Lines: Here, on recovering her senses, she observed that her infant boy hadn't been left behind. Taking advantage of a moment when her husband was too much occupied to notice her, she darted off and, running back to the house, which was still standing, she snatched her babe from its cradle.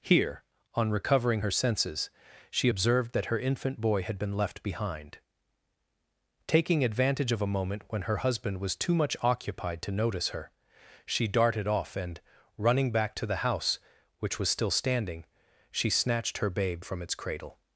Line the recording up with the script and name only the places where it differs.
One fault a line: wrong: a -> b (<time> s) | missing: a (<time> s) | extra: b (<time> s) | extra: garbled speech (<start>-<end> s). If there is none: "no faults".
wrong: hadn't -> had (4.0 s)